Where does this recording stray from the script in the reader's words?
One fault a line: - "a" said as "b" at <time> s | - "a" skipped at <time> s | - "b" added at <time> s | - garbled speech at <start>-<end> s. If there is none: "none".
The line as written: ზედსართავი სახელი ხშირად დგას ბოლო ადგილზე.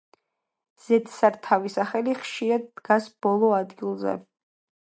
none